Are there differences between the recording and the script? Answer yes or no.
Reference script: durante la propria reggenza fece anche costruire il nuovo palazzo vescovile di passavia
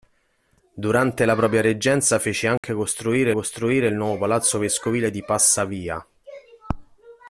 yes